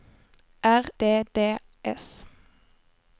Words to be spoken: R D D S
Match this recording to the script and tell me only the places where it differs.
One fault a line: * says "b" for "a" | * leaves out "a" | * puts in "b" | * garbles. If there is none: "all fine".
all fine